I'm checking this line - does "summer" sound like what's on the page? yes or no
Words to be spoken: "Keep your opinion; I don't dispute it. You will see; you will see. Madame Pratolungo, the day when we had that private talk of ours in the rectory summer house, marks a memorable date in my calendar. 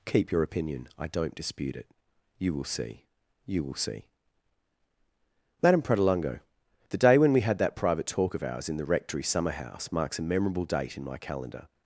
yes